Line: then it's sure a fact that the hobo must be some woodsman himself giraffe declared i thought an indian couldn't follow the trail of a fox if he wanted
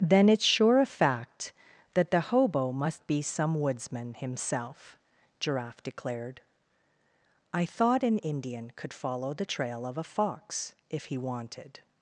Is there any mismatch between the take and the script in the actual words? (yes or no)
yes